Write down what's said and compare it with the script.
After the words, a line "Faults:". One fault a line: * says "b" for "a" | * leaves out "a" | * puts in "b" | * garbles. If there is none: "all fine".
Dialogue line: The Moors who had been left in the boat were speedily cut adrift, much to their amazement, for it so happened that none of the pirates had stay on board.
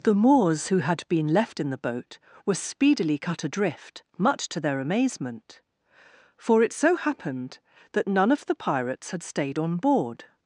The Moors who had been left in the boat were speedily cut adrift, much to their amazement, for it so happened that none of the pirates had stayed on board.
Faults:
* says "stayed" for "stay"